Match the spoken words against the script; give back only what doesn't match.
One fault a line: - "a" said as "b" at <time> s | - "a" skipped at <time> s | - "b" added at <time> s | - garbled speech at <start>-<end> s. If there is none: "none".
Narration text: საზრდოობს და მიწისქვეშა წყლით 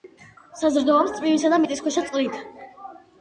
- "წვიმისა" added at 1.2 s